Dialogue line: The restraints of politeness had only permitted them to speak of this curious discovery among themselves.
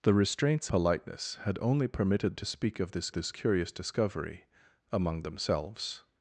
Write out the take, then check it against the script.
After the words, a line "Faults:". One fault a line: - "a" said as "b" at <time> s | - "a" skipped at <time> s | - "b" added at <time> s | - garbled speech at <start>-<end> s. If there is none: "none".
The restraints politeness had only permitted to speak of this this curious discovery among themselves.
Faults:
- "of" skipped at 0.7 s
- "them" skipped at 2.3 s
- "this" added at 3.1 s